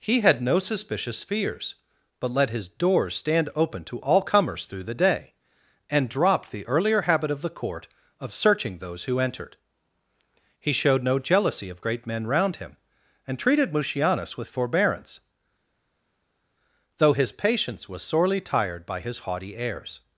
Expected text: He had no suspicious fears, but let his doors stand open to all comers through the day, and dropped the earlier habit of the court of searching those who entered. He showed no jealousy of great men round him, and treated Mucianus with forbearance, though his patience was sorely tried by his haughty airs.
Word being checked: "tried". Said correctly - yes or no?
no